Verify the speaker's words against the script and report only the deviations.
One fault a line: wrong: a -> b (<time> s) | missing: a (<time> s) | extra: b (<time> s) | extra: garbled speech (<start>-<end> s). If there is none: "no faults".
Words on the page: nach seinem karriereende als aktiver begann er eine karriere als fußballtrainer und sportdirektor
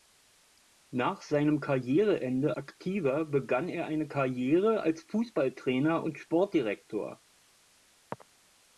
missing: als (2.5 s)